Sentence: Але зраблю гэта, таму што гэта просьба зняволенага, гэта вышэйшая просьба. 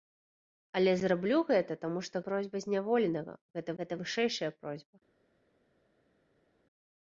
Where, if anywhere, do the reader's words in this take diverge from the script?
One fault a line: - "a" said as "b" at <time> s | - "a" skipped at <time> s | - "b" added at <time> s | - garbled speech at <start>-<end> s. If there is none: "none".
- "гэта" skipped at 2.2 s
- "гэта" added at 3.8 s